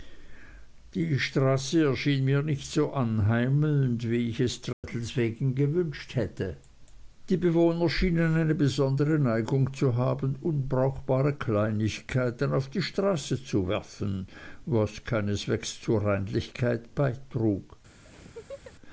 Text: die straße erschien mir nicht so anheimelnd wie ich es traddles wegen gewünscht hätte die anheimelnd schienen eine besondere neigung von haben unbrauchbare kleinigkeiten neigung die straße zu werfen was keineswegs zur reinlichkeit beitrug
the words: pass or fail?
fail